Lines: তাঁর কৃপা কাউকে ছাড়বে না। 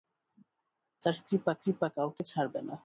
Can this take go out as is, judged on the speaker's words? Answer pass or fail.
fail